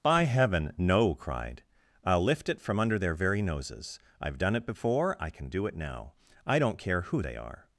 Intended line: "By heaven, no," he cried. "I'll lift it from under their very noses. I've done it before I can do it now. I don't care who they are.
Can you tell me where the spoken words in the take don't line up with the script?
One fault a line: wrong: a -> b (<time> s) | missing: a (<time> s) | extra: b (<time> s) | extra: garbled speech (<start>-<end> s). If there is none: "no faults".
missing: he (1.1 s)